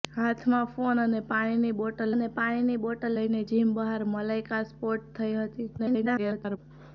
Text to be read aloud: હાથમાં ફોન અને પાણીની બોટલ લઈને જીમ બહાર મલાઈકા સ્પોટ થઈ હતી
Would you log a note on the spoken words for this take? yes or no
yes